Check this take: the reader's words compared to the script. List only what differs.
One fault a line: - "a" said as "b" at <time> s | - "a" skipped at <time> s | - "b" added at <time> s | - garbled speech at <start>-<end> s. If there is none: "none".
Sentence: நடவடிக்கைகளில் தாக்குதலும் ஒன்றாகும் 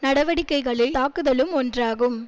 none